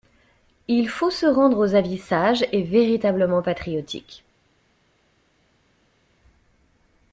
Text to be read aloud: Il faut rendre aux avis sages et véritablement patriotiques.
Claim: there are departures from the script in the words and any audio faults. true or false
true